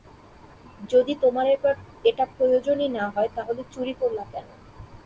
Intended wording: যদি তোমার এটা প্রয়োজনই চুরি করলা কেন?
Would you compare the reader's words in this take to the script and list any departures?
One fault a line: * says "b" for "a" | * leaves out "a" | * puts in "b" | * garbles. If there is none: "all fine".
* puts in "না হয় তাহলে"